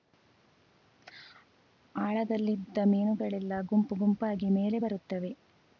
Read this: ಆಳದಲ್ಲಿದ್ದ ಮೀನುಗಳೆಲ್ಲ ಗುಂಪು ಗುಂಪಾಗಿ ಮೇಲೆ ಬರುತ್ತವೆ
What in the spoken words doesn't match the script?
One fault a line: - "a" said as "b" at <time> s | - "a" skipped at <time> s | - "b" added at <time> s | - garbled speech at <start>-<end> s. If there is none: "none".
none